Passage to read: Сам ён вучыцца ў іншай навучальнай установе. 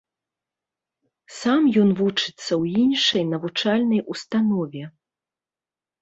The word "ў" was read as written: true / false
true